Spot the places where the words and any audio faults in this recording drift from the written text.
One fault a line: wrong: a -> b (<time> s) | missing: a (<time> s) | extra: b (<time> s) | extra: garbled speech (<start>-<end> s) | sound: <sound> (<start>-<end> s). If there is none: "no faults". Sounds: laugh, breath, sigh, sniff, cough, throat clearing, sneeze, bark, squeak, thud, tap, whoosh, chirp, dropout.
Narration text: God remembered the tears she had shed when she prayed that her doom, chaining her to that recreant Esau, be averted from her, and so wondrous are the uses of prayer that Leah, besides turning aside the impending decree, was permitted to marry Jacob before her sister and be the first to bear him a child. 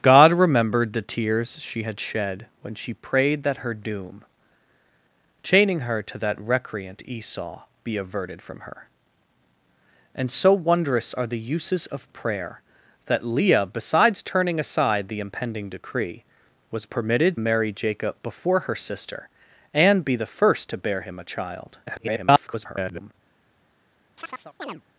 missing: to (17.4 s)
extra: garbled speech (21.9-23.1 s)
sound: chirp (24.2-24.8 s)